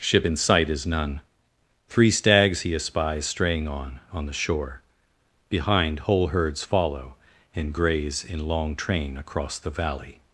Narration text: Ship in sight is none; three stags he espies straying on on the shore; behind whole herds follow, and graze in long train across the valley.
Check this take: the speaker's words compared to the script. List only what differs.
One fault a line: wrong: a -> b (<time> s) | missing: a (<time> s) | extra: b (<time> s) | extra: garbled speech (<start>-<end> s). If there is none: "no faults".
no faults